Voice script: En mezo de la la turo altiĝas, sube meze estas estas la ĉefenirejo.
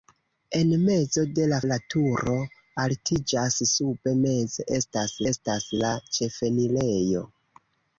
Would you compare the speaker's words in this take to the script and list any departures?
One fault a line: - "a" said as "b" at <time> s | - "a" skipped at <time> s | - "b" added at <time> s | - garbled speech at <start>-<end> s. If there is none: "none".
none